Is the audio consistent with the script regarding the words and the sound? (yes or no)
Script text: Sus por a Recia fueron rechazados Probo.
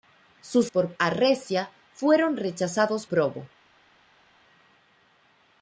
yes